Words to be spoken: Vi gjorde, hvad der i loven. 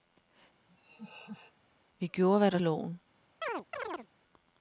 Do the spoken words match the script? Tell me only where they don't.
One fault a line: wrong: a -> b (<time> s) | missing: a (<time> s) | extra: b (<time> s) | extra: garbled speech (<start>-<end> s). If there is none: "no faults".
no faults